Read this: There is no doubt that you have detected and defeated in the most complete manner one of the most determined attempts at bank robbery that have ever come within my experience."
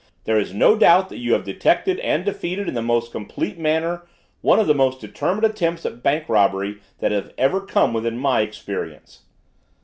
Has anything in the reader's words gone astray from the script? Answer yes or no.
no